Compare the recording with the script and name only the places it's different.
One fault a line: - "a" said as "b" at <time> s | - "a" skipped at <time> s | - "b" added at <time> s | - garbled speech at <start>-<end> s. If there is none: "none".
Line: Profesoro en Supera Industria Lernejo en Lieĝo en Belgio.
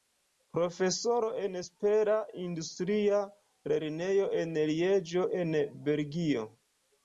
none